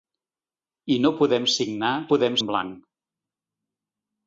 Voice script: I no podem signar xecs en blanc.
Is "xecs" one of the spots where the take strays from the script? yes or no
yes